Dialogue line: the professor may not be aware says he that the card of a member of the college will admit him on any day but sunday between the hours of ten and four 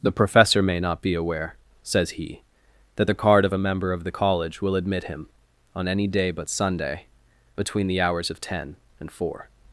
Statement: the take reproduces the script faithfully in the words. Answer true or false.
true